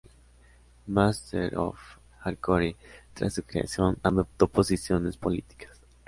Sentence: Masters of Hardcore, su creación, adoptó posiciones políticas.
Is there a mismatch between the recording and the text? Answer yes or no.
yes